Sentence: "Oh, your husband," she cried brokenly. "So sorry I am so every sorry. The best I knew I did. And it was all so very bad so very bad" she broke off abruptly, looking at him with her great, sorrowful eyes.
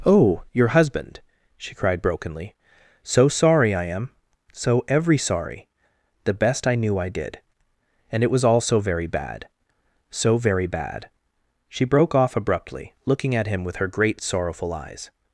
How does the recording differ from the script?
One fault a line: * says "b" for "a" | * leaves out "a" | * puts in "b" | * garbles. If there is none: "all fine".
all fine